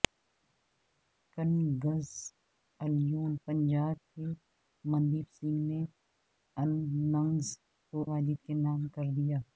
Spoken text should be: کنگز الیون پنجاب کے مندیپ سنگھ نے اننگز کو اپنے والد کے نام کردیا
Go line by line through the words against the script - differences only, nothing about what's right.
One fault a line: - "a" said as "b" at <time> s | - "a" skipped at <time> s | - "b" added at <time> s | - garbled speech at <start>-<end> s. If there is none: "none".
- "اپنے" skipped at 8.1 s